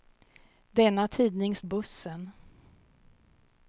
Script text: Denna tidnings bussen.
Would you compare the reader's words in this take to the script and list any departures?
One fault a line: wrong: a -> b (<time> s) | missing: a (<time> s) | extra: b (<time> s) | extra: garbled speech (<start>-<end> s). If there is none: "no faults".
no faults